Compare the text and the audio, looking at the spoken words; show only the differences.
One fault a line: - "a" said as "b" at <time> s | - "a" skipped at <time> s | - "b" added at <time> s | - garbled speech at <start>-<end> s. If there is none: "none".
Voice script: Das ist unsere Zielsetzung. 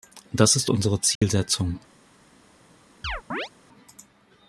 none